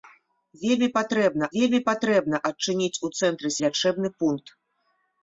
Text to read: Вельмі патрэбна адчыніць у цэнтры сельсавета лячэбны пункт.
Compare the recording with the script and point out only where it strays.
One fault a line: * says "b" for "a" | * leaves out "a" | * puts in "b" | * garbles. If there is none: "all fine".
* puts in "вельмі патрэбна"
* leaves out "сельсавета"